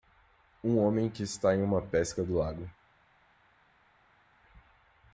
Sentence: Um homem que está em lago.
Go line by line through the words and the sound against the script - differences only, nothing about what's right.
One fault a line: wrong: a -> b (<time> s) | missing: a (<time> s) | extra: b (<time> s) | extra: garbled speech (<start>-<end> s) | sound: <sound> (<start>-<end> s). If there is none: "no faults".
extra: uma pesca do (1.6 s)